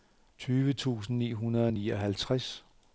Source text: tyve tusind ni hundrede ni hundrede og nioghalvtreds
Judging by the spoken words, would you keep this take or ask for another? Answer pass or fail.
fail